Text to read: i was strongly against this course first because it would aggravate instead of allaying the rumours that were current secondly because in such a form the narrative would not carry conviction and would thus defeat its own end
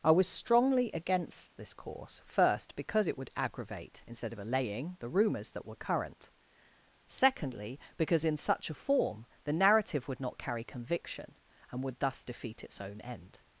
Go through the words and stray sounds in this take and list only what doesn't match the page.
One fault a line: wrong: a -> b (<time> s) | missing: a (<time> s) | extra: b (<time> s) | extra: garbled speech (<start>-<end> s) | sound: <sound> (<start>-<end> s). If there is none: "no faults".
no faults